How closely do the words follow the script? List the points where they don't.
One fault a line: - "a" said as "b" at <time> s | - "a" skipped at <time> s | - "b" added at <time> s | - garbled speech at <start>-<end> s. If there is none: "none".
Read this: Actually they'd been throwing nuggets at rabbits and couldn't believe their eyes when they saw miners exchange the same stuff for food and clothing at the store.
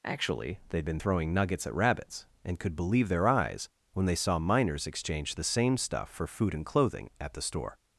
- "couldn't" said as "could" at 2.6 s